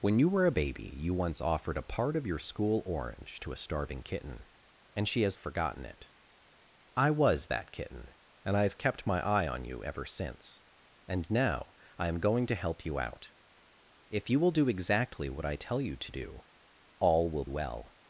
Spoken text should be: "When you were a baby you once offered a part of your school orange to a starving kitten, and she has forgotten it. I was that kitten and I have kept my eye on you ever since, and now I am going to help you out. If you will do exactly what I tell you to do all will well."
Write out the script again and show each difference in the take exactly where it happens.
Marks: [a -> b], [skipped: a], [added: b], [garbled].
"When you were a baby you once offered a part of your school orange to a starving kitten, and she has forgotten it. I was that kitten and I have kept my eye on you ever since, and now I am going to help you out. If you will do exactly what I tell you to do all will well."